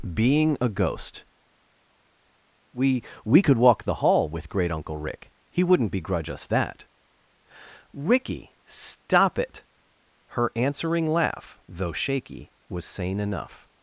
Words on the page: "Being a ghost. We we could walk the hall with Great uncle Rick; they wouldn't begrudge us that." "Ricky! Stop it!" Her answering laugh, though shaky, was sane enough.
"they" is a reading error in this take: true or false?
true